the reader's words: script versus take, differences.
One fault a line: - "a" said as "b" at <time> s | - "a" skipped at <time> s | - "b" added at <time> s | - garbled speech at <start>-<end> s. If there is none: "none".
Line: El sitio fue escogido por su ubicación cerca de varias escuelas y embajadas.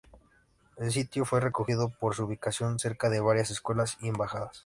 none